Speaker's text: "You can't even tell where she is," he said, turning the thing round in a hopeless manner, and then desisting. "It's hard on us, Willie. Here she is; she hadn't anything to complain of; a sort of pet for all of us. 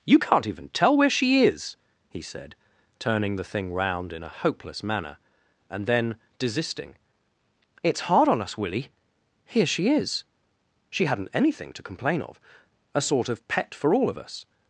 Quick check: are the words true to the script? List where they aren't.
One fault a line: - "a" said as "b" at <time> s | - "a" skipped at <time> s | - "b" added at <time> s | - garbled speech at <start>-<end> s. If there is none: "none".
none